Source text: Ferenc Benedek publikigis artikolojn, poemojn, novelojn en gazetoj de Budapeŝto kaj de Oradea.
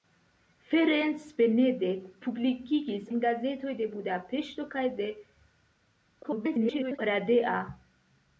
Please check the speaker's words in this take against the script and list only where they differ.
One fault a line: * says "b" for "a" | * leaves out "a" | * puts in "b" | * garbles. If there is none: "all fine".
* leaves out "artikolojn poemojn novelojn"
* garbles